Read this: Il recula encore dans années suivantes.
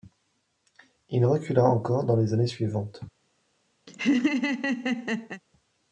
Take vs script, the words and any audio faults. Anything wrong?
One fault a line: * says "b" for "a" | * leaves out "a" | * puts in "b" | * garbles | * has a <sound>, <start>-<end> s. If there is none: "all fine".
* puts in "les"
* has a laugh, 3.9-5.4 s